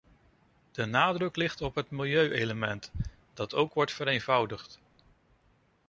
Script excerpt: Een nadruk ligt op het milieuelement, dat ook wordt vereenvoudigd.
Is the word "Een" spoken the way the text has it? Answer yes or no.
no